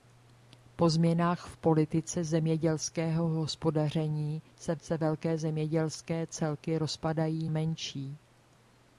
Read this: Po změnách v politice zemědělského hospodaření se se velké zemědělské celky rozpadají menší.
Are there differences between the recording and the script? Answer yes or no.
no